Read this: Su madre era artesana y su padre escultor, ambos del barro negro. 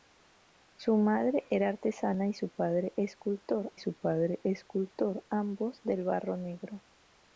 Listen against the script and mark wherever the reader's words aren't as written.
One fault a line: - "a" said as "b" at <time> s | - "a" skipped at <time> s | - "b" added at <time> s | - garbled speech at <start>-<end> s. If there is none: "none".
- "su padre escultor" added at 3.8 s